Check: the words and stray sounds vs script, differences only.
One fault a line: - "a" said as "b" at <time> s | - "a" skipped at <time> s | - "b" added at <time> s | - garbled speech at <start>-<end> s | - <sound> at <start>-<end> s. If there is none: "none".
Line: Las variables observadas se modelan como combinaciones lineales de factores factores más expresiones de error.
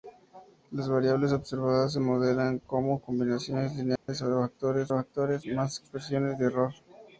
- dropout at 4.0-4.1 s